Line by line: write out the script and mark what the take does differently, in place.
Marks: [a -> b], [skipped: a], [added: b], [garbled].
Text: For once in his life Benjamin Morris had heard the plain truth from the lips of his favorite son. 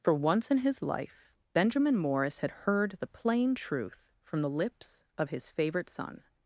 For once in his life Benjamin Morris had heard the plain truth from the lips of his favorite son.